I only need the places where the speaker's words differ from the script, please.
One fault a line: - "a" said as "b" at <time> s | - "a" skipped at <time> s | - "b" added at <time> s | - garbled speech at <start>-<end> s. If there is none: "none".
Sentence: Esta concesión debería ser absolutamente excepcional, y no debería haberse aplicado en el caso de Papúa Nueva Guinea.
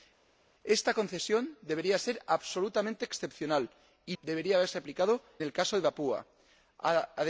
- "no" skipped at 4.2 s
- "en" skipped at 5.2 s